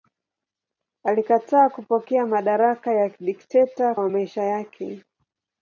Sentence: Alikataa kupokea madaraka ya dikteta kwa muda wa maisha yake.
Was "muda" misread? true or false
true